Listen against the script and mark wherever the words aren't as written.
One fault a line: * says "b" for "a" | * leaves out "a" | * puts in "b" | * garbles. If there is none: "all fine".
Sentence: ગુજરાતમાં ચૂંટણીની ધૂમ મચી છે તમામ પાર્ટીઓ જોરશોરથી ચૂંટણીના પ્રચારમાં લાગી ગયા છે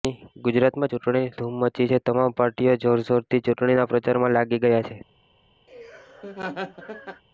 all fine